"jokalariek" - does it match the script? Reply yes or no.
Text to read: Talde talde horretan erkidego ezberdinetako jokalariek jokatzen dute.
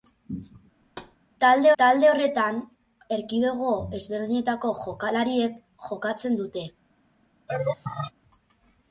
yes